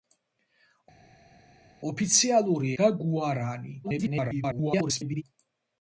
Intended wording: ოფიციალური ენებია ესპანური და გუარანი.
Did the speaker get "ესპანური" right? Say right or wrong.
wrong